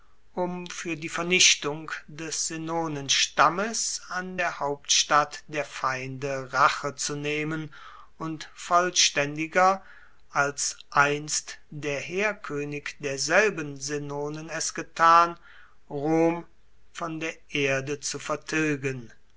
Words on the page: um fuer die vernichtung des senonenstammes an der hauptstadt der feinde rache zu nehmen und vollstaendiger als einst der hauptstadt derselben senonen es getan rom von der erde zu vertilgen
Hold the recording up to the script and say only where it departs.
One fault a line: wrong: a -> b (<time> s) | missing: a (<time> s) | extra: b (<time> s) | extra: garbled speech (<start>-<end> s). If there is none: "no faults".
wrong: hauptstadt -> heerkoenig (12.0 s)